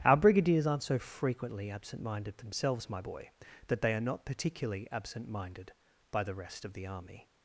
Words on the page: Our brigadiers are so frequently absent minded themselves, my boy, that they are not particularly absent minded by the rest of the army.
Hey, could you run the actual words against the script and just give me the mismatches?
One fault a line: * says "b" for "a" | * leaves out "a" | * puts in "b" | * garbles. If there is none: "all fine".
* says "aren't" for "are"